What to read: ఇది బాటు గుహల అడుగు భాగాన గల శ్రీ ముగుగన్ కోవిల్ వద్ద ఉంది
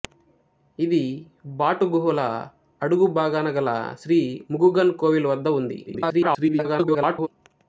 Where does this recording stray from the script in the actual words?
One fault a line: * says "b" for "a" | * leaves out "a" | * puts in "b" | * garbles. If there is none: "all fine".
* garbles